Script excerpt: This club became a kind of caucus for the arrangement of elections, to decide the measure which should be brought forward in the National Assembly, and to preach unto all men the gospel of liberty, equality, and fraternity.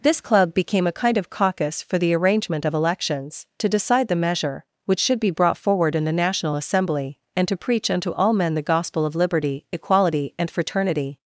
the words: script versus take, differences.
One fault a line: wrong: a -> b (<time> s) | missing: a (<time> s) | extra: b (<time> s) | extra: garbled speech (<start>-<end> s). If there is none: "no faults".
no faults